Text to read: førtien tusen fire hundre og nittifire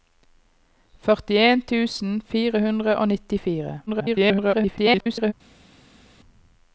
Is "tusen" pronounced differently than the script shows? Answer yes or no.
no